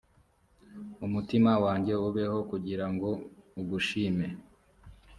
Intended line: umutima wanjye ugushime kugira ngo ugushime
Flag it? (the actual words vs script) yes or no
yes